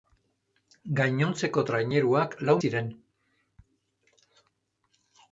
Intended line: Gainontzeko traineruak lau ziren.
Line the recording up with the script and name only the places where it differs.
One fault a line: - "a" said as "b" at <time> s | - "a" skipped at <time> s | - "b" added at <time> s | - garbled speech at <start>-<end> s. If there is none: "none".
none